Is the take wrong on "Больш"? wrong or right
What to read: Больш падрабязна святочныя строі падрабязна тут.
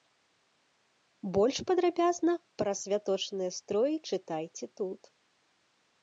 right